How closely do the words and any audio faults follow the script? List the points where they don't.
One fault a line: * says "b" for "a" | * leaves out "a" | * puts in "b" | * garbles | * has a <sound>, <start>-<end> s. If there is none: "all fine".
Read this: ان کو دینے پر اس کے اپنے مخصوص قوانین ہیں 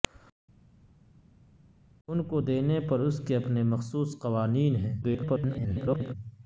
* garbles